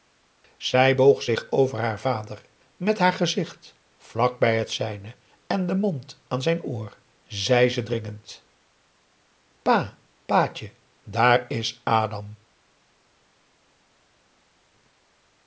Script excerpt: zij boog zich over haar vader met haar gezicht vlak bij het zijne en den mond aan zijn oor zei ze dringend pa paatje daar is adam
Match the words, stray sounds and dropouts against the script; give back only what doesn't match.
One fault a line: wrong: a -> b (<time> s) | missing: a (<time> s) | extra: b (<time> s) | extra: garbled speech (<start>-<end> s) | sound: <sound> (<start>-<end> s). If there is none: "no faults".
no faults